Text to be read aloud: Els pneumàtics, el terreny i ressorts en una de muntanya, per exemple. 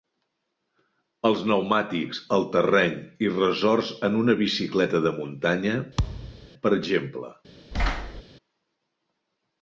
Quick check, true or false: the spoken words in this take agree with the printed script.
false